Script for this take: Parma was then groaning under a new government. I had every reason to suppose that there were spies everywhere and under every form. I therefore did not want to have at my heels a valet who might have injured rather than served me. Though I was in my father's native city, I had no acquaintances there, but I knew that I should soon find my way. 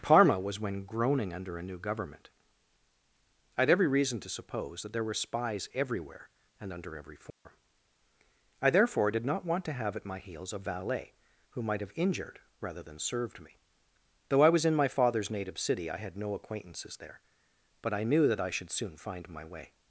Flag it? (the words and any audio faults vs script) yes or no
yes